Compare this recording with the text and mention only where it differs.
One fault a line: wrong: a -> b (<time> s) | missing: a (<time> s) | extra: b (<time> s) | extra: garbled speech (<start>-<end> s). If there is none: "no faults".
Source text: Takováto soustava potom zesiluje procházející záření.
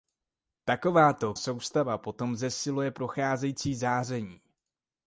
no faults